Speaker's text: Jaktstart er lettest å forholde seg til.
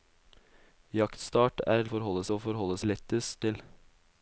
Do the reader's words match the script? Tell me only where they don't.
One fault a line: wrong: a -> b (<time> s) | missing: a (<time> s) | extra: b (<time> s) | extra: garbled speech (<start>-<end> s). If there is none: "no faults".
wrong: lettest -> forholde (1.9 s)
wrong: seg -> lettest (2.9 s)